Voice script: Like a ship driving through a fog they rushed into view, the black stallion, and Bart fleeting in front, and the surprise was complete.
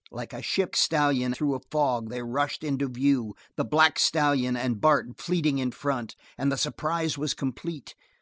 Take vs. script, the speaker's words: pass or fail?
fail